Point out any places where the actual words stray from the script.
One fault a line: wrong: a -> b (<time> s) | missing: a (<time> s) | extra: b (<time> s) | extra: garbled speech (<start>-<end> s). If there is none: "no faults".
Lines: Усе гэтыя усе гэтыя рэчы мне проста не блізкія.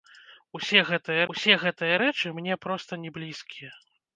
no faults